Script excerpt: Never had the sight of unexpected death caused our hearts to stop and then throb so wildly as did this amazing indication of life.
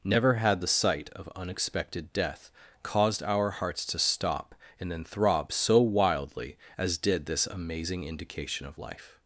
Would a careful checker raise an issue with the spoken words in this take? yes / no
no